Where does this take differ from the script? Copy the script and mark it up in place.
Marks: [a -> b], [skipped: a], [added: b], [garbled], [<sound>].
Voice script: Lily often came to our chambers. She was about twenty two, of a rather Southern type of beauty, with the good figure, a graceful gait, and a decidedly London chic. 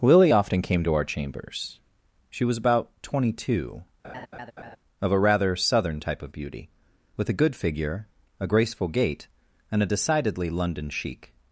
Lily often came to our chambers. She was about twenty two, [laugh] of a rather Southern type of beauty, with [the -> a] good figure, a graceful gait, and a decidedly London chic.